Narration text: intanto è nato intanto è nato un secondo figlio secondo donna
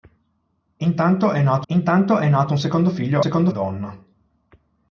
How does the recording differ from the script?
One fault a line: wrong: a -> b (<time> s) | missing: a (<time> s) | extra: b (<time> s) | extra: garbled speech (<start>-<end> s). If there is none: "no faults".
no faults